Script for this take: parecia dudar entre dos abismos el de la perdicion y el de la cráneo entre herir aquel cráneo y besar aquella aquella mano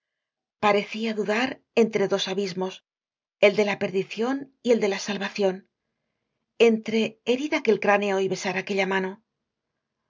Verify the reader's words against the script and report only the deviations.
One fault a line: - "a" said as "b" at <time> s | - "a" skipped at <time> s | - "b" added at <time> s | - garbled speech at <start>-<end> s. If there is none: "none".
- "cráneo" said as "salvacion" at 5.1 s
- "aquella" skipped at 8.9 s